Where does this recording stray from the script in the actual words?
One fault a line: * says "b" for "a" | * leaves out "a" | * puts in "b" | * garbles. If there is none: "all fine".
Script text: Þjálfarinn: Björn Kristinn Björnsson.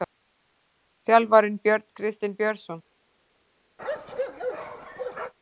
all fine